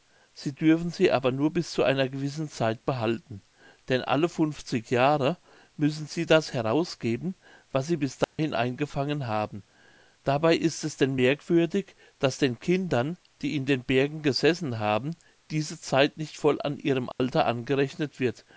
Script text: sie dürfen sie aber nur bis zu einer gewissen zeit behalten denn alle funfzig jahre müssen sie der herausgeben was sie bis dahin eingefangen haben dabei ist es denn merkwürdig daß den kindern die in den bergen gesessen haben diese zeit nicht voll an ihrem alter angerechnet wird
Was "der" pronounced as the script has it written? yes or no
no